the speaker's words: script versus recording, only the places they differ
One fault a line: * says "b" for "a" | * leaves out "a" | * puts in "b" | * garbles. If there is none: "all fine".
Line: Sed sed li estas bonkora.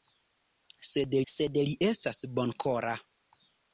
all fine